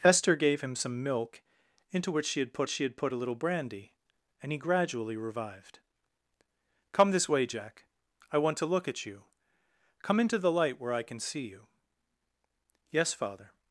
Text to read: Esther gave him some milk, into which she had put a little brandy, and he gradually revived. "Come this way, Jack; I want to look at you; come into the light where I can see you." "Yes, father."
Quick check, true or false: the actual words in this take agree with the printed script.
false